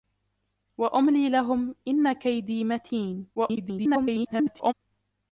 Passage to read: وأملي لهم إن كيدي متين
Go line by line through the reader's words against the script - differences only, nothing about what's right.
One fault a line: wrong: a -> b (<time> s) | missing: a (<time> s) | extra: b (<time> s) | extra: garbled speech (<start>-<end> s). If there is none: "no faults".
extra: garbled speech (3.3-4.7 s)